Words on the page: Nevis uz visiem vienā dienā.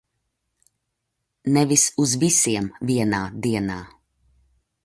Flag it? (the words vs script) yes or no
no